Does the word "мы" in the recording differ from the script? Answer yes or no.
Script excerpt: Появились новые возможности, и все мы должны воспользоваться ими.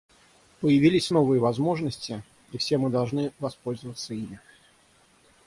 no